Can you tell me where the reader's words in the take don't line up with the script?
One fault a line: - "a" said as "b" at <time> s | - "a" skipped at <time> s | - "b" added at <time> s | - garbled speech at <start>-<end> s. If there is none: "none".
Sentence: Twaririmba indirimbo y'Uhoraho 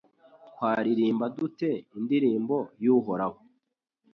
- "dute" added at 1.4 s